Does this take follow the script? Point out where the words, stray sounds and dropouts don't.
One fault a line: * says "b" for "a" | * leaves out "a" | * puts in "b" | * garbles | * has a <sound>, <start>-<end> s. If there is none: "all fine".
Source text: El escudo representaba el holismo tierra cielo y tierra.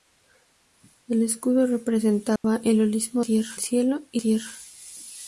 * has a dropout, 2.4-2.4 s